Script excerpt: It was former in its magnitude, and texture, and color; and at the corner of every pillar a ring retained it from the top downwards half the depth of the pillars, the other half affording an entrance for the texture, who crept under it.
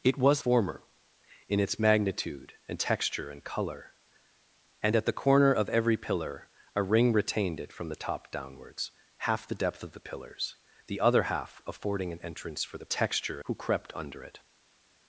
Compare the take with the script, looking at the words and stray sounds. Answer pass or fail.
pass